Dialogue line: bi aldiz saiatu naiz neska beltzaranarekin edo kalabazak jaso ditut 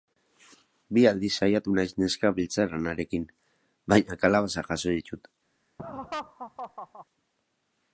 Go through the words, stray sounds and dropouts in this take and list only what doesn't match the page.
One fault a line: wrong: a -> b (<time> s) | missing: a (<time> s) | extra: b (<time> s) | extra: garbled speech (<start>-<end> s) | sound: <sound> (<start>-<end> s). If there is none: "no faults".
wrong: edo -> baina (3.9 s)
sound: laugh (5.8-7.1 s)